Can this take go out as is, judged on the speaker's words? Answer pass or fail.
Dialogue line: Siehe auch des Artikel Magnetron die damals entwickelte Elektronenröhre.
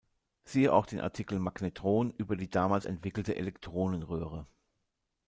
fail